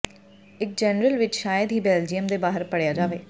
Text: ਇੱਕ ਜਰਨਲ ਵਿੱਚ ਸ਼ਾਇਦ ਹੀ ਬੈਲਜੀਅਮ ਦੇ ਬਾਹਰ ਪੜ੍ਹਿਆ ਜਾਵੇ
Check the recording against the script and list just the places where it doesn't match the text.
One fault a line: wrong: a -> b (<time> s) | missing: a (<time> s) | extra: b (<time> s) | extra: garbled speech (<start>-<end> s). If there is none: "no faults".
no faults